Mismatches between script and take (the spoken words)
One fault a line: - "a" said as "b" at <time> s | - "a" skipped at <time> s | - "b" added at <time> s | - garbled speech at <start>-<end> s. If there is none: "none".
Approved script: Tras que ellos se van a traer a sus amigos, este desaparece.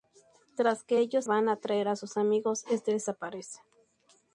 - "se" skipped at 1.2 s